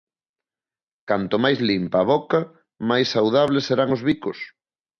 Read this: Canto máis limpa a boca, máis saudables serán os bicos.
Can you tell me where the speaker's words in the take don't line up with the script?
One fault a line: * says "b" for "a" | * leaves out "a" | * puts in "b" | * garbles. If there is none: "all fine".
all fine